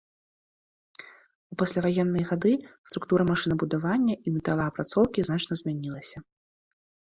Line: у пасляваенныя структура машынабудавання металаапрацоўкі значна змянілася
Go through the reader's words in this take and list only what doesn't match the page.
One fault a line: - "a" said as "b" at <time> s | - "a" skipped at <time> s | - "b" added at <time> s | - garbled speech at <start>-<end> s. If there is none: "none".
- "гады" added at 2.3 s
- "і" added at 4.2 s